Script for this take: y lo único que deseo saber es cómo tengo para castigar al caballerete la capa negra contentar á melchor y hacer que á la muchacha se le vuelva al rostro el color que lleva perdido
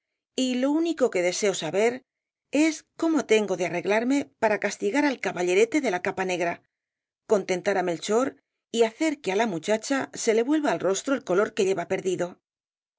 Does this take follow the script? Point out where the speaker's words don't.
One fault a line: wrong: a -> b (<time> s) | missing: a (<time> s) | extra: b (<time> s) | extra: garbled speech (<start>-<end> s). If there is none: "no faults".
extra: de arreglarme (3.5 s)
extra: de (5.8 s)